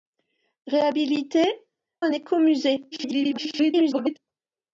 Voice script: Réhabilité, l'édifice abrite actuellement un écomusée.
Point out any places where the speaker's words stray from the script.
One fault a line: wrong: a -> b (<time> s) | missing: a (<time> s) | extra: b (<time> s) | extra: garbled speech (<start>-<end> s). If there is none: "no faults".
missing: l'édifice abrite actuellement (1.7 s)
extra: garbled speech (2.9-4.2 s)